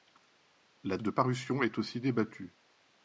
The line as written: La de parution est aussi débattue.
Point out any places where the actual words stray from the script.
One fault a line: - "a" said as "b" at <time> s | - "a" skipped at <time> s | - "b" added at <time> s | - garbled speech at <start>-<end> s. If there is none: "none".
none